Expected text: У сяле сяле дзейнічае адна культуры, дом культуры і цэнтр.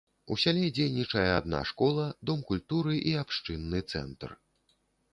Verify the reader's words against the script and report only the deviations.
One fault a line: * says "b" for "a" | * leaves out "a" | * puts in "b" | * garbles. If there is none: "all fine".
* leaves out "сяле"
* says "школа" for "культуры"
* puts in "абшчынны"